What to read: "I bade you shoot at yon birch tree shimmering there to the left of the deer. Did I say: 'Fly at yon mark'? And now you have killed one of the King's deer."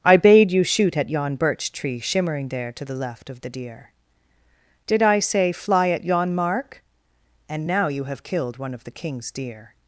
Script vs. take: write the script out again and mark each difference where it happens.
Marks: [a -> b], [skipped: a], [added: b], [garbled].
"I bade you shoot at yon birch tree shimmering there to the left of the deer. Did I say: 'Fly at yon mark'? And now you have killed one of the King's deer."